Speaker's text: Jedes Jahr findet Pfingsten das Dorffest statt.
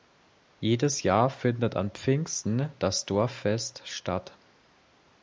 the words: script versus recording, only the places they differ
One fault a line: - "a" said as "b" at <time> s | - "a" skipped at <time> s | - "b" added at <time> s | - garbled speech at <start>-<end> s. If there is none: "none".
- "an" added at 1.8 s